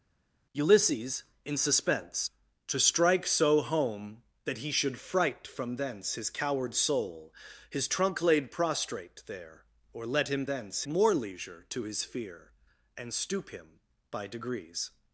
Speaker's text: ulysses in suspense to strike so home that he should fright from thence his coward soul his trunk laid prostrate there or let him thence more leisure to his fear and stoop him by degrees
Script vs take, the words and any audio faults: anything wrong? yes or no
no